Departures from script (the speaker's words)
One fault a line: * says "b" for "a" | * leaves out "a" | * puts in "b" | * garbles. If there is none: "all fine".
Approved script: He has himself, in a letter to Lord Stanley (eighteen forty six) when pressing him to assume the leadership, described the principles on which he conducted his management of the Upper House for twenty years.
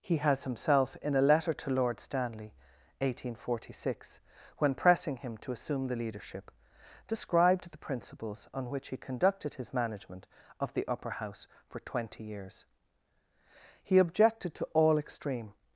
* puts in "He objected to all extreme"